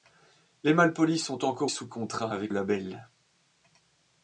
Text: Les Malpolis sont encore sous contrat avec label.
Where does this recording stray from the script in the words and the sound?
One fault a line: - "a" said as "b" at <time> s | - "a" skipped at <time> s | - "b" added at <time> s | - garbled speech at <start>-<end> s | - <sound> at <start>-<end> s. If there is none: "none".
none